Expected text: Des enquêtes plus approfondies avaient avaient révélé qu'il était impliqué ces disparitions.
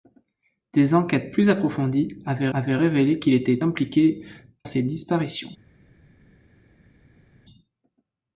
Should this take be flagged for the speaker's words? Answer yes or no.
no